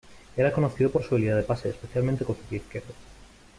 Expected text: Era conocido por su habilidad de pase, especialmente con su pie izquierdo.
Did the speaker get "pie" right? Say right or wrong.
right